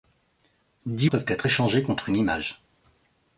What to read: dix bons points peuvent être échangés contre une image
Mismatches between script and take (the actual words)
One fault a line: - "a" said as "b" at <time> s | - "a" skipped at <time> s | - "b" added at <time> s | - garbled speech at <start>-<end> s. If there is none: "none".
- "bons points" skipped at 1.1 s